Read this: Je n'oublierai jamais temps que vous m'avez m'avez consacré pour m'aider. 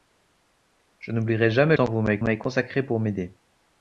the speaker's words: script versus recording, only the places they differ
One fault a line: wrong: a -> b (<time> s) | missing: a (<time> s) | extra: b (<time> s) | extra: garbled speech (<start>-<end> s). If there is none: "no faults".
no faults